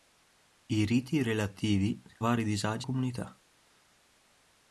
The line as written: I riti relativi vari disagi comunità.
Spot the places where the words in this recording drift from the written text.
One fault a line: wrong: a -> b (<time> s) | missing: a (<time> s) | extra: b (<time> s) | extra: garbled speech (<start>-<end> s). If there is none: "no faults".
no faults